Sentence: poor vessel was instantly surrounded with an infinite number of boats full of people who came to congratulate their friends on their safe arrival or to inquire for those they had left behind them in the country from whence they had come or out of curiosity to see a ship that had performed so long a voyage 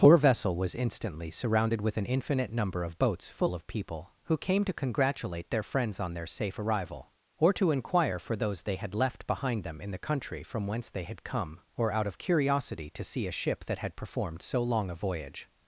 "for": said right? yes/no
yes